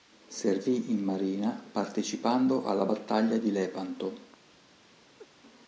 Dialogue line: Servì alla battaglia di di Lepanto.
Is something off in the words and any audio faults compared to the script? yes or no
yes